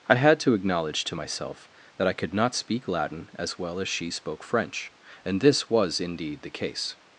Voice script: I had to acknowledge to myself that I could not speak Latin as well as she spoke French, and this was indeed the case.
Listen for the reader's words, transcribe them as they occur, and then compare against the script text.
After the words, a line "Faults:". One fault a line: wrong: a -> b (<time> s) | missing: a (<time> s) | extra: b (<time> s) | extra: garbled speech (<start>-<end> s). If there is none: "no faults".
I had to acknowledge to myself that I could not speak Latin as well as she spoke French, and this was indeed the case.
Faults:
no faults